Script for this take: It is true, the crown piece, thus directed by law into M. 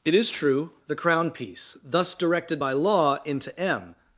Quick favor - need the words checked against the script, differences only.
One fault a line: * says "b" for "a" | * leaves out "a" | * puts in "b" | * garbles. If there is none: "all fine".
all fine